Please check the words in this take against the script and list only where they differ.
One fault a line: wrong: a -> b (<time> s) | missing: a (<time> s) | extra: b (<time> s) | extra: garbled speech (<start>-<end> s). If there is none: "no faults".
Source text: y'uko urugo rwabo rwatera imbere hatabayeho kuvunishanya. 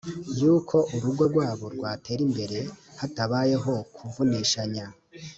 no faults